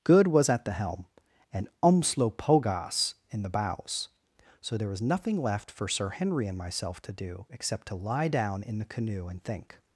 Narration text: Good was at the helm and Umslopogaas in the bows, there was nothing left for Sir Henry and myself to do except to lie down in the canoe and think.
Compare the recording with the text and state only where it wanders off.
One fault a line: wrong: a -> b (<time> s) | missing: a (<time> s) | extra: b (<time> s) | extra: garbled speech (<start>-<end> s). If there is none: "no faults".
extra: so (4.6 s)